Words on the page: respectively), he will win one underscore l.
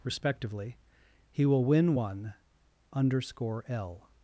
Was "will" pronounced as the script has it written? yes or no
yes